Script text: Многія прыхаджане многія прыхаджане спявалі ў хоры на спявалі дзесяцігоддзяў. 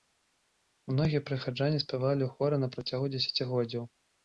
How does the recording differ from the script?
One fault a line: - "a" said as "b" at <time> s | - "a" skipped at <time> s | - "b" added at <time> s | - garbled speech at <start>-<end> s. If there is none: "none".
- "многія прыхаджане" skipped at 1.8 s
- "спявалі" said as "працягу" at 2.8 s